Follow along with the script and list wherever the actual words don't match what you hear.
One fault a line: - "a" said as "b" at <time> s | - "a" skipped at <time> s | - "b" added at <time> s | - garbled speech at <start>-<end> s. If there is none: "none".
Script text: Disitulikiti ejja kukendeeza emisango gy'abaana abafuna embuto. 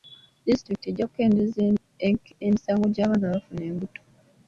none